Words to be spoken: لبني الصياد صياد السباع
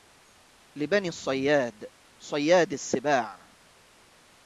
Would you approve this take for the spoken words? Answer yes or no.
yes